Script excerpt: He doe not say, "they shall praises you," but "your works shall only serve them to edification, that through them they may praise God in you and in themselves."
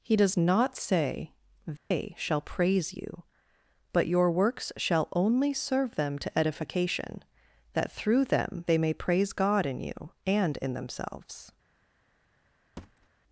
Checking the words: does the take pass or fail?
fail